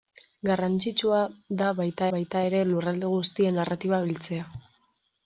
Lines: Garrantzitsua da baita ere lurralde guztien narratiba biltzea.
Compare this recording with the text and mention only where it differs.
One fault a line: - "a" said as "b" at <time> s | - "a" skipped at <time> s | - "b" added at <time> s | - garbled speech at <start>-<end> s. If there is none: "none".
- "baita" added at 2.1 s